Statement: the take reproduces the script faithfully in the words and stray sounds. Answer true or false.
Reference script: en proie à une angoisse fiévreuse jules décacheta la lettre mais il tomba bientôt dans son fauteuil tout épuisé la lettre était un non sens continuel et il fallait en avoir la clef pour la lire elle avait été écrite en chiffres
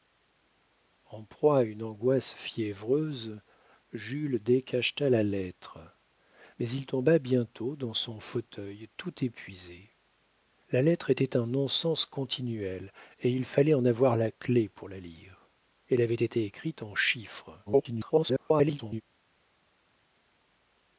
false